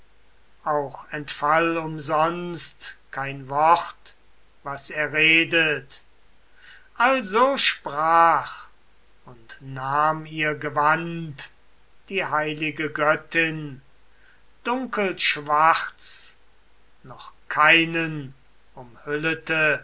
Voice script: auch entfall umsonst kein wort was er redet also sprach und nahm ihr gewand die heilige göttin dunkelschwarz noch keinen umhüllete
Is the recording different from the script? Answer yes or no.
no